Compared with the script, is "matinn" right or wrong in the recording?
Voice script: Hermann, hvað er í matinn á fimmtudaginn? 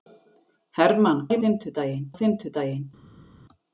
wrong